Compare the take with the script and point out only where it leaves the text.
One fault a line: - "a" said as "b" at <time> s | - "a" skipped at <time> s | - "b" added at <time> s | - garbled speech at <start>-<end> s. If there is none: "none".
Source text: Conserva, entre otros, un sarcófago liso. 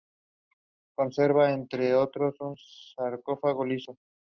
none